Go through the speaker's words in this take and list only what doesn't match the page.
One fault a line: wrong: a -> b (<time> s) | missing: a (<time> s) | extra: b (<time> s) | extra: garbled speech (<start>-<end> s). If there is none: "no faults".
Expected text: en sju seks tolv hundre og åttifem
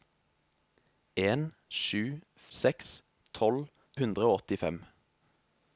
no faults